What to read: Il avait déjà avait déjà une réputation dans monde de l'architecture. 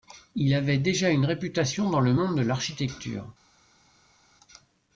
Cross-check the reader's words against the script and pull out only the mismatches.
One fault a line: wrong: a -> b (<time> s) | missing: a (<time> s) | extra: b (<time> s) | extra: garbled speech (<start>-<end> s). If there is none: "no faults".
missing: avait déjà (1.1 s)
extra: le (2.0 s)